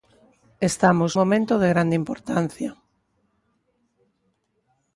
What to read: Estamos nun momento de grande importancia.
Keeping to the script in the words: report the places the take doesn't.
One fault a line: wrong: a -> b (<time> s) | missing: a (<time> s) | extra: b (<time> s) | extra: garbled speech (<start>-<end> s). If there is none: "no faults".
missing: nun (1.1 s)